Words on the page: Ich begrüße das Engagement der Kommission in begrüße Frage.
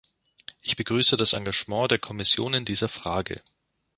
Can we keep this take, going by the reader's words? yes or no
no